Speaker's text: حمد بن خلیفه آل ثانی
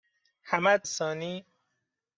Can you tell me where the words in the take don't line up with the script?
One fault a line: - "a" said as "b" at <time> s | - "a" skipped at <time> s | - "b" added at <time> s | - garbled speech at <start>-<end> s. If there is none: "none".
- "بن خلیفه آل" skipped at 0.9 s